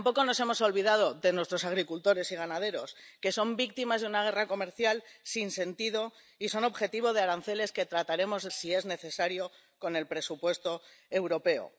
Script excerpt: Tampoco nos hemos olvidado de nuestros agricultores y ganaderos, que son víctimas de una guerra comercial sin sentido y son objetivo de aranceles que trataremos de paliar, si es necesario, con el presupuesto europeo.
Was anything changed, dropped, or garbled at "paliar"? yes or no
yes